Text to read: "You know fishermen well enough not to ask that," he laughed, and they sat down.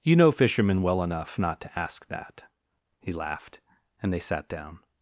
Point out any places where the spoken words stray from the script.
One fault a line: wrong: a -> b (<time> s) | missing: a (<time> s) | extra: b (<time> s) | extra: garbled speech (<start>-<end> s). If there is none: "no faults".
no faults